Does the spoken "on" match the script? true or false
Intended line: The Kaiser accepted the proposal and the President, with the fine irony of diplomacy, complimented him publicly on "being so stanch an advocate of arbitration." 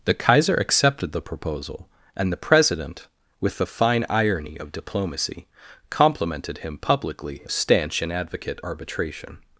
false